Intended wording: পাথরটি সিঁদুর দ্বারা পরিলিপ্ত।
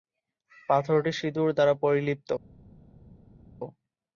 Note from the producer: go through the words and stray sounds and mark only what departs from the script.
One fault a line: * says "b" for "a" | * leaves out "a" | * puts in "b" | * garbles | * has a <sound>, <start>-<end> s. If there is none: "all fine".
all fine